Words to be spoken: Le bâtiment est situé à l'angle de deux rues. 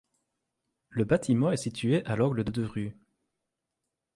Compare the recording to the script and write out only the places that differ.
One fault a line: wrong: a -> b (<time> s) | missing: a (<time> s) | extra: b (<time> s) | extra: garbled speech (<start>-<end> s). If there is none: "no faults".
no faults